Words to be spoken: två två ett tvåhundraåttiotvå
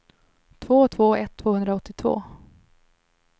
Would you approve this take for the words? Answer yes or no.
yes